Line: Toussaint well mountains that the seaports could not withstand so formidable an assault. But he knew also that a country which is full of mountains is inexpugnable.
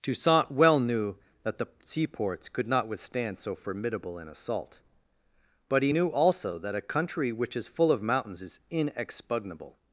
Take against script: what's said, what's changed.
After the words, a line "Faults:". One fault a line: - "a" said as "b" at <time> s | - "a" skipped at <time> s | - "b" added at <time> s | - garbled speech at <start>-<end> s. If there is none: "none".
Toussaint well knew that the seaports could not withstand so formidable an assault. But he knew also that a country which is full of mountains is inexpugnable.
Faults:
- "mountains" said as "knew" at 0.8 s